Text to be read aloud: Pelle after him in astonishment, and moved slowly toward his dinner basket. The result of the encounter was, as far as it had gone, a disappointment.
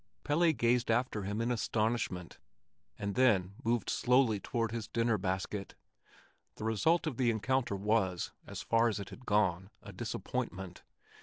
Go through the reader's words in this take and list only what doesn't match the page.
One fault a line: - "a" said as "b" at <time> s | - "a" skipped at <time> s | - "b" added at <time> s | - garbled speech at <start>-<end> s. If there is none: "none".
- "gazed" added at 0.5 s
- "then" added at 3.2 s